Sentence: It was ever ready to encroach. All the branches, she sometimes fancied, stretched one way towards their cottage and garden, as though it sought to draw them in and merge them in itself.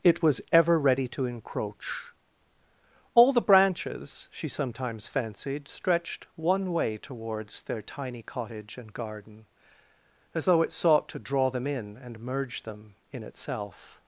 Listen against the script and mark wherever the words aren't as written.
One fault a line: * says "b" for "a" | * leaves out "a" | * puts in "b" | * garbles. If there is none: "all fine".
* puts in "tiny"